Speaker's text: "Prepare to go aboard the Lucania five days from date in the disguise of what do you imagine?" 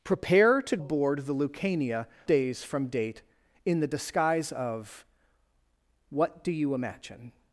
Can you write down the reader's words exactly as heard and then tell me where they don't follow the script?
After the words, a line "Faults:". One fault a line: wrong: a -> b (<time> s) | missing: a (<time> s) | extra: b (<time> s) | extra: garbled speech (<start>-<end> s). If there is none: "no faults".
"Prepare to aboard the Lucania days from date in the disguise of what do you imagine?"
Faults:
missing: go (0.8 s)
missing: five (2.1 s)